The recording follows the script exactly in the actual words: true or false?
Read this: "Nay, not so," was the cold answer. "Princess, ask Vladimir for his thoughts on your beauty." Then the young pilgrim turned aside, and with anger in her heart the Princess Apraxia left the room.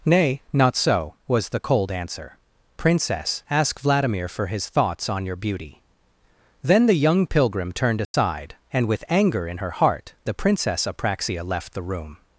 true